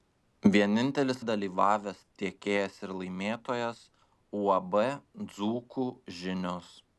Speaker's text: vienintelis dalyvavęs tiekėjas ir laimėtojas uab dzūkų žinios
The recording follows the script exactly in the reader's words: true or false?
true